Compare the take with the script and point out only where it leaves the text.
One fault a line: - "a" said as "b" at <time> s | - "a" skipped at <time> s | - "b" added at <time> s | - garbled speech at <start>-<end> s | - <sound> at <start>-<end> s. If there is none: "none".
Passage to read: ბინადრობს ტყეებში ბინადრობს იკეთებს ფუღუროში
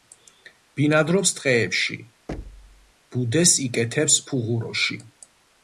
- thud at 2.3-2.9 s
- "ბინადრობს" said as "ბუდეს" at 3.2 s